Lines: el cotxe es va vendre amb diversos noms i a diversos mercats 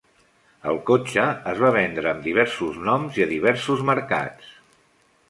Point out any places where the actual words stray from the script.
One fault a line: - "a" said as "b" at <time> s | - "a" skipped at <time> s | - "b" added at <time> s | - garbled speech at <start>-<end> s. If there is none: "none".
none